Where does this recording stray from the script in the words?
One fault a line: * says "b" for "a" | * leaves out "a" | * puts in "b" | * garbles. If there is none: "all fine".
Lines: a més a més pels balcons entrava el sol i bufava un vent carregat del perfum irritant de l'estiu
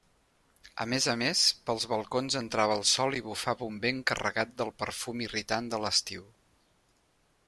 all fine